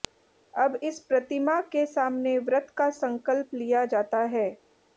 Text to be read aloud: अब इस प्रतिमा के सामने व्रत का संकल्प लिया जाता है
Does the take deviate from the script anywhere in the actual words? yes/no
no